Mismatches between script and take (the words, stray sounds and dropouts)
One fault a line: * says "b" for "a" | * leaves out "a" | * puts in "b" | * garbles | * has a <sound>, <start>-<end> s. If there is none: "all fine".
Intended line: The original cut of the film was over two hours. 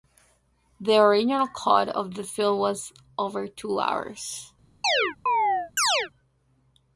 * has a chirp, 4.8-6.1 s